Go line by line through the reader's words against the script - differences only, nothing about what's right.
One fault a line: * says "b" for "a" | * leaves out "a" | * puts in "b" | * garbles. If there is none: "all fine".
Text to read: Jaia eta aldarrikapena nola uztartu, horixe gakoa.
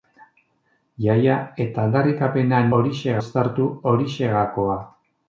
* says "horixe" for "nola"